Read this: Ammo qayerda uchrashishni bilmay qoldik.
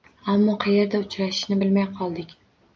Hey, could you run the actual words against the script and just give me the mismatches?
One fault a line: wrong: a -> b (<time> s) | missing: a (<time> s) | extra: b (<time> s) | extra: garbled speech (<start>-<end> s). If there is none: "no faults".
no faults